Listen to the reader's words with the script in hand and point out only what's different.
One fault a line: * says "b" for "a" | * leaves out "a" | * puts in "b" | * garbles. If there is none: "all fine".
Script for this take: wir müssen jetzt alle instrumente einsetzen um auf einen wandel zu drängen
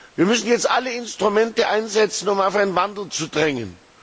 all fine